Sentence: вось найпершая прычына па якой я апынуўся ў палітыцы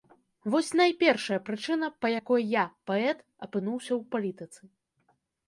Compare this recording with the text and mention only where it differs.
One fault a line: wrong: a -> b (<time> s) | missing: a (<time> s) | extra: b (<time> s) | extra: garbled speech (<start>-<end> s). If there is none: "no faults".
extra: паэт (2.9 s)